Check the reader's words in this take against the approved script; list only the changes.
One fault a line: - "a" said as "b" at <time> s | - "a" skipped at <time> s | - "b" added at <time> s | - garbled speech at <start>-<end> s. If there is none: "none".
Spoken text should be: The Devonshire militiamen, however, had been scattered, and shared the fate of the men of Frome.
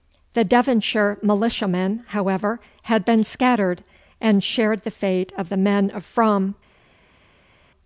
none